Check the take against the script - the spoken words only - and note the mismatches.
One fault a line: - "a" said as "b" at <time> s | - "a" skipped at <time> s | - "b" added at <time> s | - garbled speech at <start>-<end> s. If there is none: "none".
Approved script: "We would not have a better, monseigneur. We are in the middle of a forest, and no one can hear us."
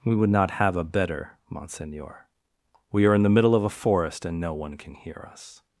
none